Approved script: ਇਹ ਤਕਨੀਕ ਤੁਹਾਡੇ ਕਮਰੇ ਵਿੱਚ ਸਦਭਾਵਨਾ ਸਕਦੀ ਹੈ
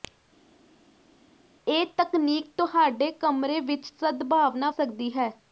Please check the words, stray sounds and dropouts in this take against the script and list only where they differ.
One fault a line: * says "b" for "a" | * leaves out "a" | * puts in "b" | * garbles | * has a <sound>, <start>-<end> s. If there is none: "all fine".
all fine